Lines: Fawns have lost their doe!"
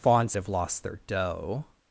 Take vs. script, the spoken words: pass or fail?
pass